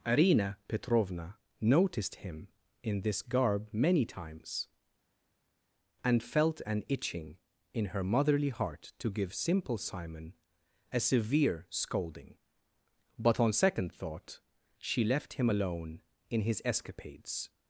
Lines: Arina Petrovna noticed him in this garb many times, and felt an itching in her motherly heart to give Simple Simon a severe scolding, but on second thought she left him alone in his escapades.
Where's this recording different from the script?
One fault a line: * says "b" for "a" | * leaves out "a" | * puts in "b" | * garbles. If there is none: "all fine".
all fine